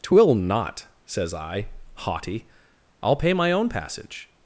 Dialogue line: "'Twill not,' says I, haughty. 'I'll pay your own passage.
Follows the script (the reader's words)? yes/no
no